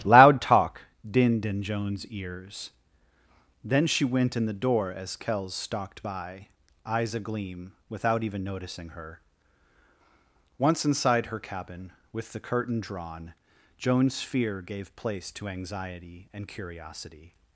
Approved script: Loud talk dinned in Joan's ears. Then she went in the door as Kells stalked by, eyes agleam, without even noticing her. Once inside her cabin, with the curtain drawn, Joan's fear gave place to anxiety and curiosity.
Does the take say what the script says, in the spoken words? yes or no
yes